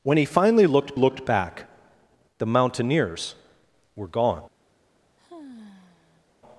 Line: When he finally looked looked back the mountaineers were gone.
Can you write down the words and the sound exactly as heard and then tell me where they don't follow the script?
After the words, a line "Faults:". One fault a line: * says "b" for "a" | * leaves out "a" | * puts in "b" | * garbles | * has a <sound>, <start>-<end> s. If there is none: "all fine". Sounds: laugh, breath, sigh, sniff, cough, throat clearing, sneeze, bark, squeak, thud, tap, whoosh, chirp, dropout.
When he finally looked looked back the mountaineers were gone.
Faults:
* has a sigh, 5.2-6.3 s